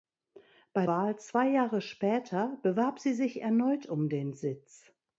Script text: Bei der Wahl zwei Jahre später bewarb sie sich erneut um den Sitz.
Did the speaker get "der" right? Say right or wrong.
wrong